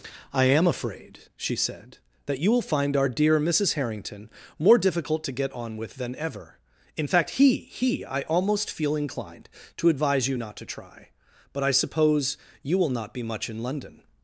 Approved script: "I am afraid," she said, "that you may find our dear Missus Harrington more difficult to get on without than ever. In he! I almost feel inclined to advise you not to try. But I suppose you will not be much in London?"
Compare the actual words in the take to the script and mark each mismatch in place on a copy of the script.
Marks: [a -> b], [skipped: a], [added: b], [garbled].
"I am afraid," she said, "that you [may -> will] find our dear Missus Harrington more difficult to get on [without -> with] than ever. In [added: fact he] he! I almost feel inclined to advise you not to try. But I suppose you will not be much in London?"